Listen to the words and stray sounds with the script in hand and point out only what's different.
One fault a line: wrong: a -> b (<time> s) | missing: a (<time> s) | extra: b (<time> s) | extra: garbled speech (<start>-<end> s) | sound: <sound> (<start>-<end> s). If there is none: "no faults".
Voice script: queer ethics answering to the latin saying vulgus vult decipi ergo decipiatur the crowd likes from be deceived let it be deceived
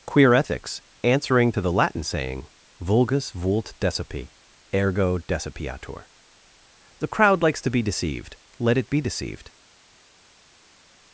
wrong: from -> to (7.6 s)